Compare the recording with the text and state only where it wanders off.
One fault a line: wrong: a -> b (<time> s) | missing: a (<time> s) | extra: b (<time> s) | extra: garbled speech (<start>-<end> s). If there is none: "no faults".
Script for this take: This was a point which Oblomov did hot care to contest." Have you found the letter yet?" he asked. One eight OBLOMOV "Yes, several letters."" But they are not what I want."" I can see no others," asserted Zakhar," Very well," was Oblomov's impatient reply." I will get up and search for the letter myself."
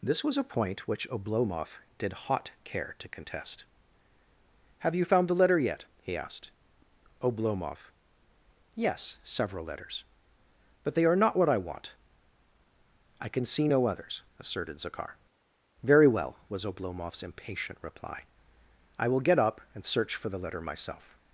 missing: One eight (6.5 s)